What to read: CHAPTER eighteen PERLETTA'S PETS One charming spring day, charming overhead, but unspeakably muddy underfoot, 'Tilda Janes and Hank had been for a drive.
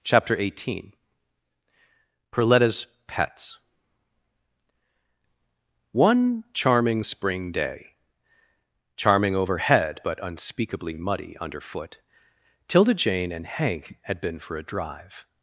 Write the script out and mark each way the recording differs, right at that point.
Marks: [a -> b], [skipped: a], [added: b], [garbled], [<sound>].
CHAPTER eighteen PERLETTA'S PETS One charming spring day, charming overhead, but unspeakably muddy underfoot, 'Tilda [Janes -> Jane] and Hank had been for a drive.